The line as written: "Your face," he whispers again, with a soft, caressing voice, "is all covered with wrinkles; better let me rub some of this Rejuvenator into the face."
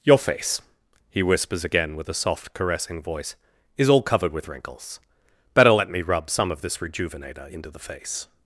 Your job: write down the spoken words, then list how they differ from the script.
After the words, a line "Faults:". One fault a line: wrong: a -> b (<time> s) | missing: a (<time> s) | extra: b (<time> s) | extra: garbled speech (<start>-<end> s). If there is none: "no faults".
"Your face," he whispers again, with a soft, caressing voice, "is all covered with wrinkles; better let me rub some of this Rejuvenator into the face."
Faults:
no faults